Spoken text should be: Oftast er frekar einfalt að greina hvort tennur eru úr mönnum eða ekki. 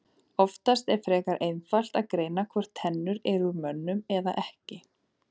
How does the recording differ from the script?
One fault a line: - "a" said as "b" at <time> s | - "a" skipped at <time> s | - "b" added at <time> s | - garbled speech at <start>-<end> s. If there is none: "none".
none